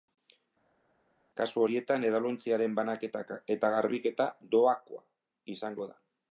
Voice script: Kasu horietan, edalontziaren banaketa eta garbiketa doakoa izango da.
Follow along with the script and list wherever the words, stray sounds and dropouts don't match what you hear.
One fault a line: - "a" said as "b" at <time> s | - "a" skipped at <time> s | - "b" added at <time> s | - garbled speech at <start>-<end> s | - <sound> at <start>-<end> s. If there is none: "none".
none